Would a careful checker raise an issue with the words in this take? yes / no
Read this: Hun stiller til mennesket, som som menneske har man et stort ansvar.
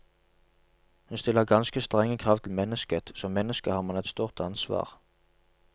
yes